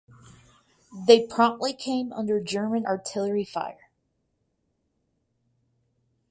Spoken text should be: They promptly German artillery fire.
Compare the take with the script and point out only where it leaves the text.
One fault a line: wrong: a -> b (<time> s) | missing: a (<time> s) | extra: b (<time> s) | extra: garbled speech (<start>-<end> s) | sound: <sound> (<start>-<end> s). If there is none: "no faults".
extra: came under (1.7 s)